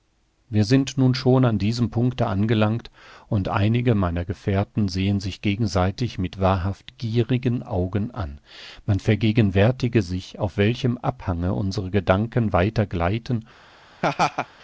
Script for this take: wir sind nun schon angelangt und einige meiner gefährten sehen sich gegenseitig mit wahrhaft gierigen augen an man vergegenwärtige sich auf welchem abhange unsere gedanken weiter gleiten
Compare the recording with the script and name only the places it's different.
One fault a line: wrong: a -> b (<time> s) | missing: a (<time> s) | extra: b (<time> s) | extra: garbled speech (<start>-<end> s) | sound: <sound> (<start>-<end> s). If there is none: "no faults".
extra: an diesem punkte (1.4 s)
sound: laugh (14.0-14.5 s)